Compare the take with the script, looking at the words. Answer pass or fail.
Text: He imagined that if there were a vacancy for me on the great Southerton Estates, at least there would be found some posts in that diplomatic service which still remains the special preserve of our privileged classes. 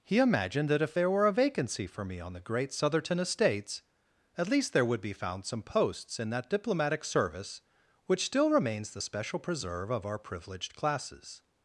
pass